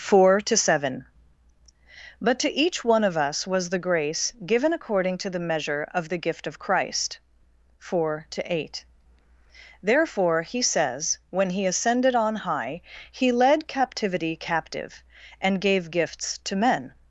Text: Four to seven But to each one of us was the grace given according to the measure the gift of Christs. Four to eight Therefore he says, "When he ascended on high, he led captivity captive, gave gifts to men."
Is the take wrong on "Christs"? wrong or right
wrong